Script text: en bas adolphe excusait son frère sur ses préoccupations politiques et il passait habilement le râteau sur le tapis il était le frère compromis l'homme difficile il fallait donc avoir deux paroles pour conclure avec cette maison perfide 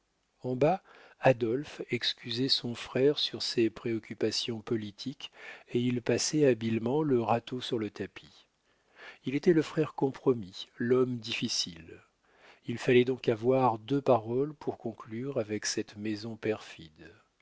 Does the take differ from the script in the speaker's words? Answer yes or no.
no